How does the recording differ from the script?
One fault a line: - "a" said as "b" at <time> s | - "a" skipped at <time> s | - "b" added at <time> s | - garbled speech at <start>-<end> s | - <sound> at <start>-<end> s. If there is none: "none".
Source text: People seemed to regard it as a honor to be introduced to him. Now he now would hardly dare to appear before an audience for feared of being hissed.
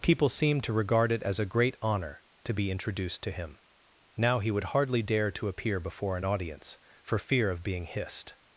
- "great" added at 1.4 s
- "now" skipped at 4.5 s
- "feared" said as "fear" at 7.2 s